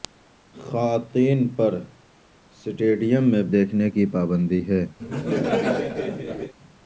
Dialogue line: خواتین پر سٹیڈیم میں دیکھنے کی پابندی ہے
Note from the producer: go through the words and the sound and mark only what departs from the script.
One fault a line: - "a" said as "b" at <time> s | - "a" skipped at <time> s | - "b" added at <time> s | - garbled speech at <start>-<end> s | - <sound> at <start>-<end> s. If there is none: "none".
- laugh at 5.0-6.5 s